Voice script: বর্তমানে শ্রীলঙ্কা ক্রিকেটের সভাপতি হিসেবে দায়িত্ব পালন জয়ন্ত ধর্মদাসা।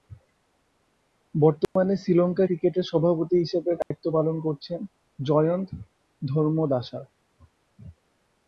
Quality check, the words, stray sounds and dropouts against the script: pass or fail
fail